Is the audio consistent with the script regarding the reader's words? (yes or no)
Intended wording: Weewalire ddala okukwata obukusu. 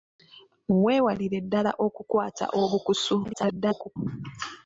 no